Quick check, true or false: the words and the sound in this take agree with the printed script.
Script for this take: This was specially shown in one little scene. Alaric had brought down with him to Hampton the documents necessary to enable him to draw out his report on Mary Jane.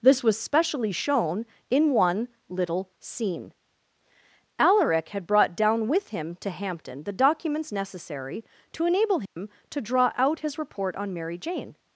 false